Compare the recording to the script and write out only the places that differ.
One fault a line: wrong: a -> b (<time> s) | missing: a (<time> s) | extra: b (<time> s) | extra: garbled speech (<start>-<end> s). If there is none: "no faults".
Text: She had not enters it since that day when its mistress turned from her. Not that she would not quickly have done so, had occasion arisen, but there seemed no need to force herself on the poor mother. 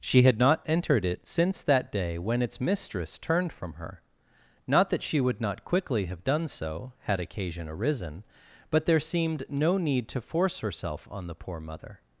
wrong: enters -> entered (0.7 s)